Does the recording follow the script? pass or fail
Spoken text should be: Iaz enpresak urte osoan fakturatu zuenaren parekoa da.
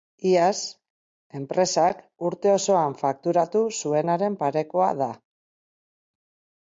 pass